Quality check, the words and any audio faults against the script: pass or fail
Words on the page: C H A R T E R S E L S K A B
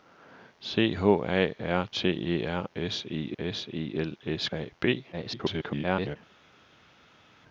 fail